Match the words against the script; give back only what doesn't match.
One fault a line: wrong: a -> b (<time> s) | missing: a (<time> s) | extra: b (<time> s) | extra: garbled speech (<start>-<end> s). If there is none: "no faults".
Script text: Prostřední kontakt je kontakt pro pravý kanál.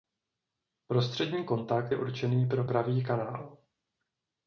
wrong: kontakt -> určený (2.0 s)